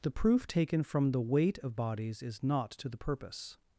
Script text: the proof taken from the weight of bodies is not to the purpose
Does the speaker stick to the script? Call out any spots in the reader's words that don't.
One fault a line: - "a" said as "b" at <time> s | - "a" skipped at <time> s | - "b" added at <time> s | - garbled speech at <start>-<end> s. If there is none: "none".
none